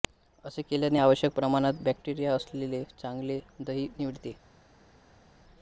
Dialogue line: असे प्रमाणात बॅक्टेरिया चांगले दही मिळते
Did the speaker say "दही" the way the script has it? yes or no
yes